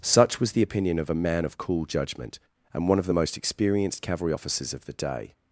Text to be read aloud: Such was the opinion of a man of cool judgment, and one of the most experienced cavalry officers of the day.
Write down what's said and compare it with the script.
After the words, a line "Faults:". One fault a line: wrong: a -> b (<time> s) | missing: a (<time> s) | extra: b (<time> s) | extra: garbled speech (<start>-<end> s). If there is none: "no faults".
Such was the opinion of a man of cool judgment, and one of the most experienced cavalry officers of the day.
Faults:
no faults